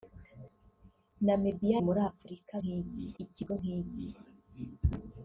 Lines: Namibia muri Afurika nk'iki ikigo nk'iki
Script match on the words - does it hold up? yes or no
yes